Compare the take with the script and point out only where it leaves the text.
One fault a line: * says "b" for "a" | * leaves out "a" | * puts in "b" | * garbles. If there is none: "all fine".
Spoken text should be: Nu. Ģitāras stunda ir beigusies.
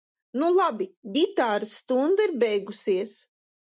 * puts in "labi"